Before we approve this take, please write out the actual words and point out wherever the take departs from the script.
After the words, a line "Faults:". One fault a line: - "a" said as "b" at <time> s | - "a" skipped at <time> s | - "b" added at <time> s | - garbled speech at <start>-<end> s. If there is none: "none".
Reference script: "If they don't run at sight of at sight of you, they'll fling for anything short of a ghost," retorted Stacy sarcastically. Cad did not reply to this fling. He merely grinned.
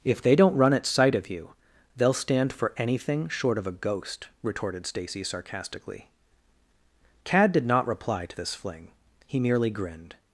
"If they don't run at sight of you, they'll stand for anything short of a ghost," retorted Stacy sarcastically. Cad did not reply to this fling. He merely grinned.
Faults:
- "at sight of" skipped at 1.3 s
- "fling" said as "stand" at 2.1 s